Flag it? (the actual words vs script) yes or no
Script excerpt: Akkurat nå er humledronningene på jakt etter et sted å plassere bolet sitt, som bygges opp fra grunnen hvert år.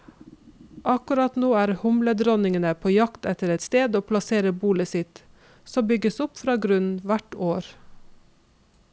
no